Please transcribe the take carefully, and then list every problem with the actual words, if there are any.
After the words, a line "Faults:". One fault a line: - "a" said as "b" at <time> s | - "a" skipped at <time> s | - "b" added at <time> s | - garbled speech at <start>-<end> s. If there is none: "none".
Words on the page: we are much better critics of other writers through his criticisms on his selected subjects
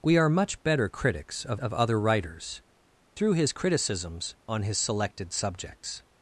we are much better critics of of other writers through his criticisms on his selected subjects
Faults:
- "of" added at 1.6 s